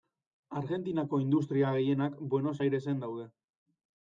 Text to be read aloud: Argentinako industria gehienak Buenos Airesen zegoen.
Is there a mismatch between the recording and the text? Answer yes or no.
yes